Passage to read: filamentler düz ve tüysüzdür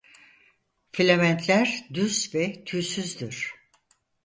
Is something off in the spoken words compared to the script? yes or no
no